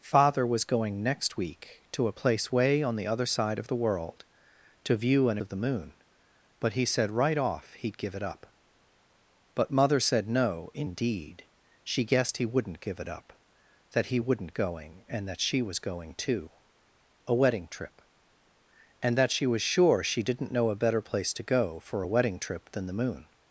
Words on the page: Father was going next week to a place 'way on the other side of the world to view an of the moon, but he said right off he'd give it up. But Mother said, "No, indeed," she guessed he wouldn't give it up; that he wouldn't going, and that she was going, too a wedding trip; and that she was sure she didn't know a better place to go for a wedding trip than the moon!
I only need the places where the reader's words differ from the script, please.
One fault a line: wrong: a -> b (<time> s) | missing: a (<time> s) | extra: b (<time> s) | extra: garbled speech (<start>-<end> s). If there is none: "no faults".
no faults